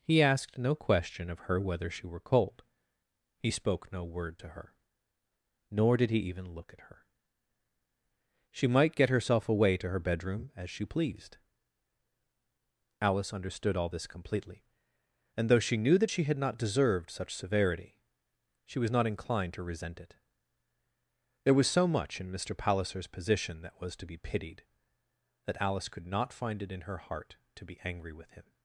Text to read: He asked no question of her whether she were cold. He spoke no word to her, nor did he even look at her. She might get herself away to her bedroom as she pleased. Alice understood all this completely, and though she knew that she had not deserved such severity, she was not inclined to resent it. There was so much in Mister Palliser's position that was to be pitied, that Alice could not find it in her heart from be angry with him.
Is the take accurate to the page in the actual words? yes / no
no